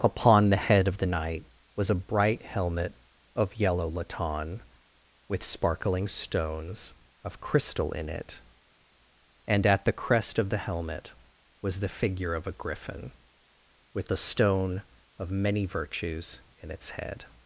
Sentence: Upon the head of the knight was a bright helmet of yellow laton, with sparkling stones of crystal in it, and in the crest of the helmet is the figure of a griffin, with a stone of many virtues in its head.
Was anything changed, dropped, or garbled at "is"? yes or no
yes